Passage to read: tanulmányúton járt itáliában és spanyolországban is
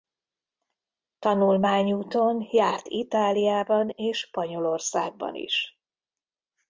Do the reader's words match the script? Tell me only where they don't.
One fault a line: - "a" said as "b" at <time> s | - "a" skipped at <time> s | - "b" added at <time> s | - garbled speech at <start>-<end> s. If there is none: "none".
none